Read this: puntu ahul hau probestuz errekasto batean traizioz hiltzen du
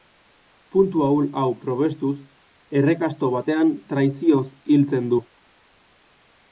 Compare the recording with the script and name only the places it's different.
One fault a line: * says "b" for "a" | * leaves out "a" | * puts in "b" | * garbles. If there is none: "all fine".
all fine